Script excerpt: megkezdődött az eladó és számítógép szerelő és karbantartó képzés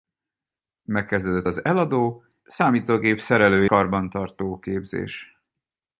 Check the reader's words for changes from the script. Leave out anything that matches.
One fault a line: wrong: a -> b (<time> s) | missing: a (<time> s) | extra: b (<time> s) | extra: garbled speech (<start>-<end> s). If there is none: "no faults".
missing: és (2.2 s)
missing: és (3.6 s)